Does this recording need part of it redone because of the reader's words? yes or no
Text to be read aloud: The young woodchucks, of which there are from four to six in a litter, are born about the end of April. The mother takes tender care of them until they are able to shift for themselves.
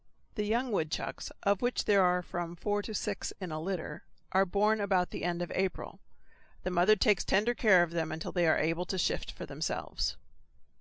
no